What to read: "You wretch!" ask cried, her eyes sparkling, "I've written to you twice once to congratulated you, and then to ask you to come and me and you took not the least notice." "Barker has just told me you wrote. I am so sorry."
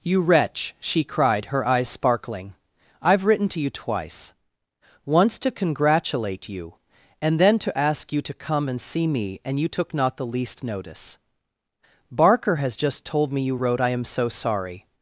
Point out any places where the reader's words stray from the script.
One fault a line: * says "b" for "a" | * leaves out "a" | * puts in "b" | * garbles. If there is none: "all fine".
* says "she" for "ask"
* says "congratulate" for "congratulated"
* puts in "see"